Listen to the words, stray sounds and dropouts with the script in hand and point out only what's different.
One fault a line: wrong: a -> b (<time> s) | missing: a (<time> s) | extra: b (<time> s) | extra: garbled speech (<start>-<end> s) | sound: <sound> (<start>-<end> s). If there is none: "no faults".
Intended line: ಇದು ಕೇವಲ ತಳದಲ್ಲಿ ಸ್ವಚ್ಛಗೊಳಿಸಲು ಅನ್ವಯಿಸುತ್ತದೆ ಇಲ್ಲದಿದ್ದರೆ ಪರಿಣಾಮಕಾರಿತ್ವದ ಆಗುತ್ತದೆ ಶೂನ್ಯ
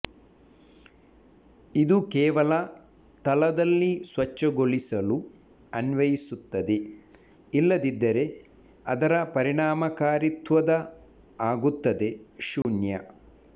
extra: ಅದರ (8.9 s)
sound: dropout (12.6-12.7 s)